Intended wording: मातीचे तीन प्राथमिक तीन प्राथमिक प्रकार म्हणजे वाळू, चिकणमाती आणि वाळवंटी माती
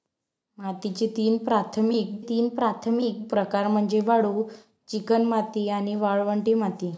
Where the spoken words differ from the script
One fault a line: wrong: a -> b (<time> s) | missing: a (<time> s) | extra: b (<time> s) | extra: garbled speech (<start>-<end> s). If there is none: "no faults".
no faults